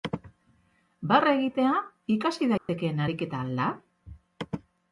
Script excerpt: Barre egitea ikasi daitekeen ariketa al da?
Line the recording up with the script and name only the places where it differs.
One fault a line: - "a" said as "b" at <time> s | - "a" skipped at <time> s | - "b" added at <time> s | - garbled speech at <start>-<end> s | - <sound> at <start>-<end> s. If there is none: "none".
- dropout at 2.6-2.7 s